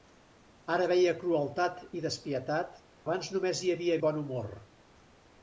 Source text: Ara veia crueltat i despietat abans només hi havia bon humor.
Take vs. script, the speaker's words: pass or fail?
pass